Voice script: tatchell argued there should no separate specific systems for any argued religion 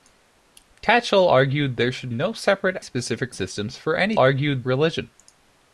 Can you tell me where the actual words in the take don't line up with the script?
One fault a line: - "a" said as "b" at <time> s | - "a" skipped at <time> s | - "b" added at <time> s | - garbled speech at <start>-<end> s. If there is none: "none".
none